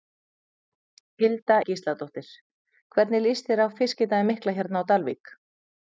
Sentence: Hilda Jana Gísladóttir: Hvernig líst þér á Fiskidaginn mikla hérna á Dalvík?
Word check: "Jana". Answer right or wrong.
wrong